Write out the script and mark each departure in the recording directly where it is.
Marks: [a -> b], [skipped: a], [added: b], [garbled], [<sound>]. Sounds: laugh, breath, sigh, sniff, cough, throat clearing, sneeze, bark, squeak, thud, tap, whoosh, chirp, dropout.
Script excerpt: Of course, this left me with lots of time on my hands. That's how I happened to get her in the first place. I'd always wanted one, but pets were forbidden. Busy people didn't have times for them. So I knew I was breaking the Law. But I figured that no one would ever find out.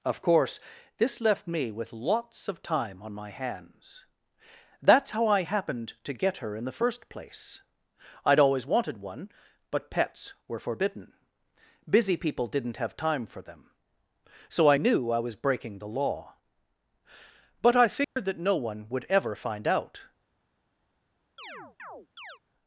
Of course, this left me with lots of time on my hands. That's how I happened to get her in the first place. I'd always wanted one, but pets were forbidden. Busy people didn't have [times -> time] for them. So I knew I was breaking the Law. But I figured [dropout] that no one would ever find out. [chirp]